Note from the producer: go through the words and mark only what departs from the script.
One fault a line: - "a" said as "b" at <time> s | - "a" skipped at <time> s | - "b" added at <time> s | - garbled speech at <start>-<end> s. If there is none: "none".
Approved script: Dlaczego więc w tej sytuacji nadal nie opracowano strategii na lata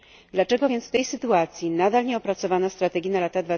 none